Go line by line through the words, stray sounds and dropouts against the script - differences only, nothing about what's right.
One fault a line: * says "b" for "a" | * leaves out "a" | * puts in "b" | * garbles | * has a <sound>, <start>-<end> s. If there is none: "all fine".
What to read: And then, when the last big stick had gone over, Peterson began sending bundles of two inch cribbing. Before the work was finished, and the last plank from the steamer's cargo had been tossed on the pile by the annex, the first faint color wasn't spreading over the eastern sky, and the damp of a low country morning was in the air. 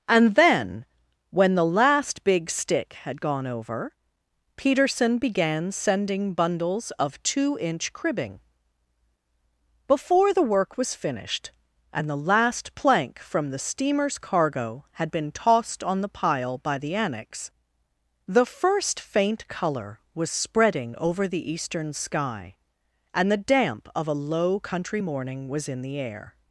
* says "was" for "wasn't"